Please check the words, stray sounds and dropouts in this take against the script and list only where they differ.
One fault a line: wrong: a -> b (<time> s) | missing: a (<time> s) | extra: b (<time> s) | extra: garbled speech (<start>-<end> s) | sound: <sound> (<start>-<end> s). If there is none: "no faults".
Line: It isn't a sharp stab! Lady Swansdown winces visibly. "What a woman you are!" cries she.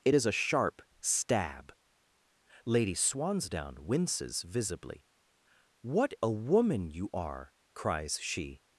wrong: isn't -> is (0.1 s)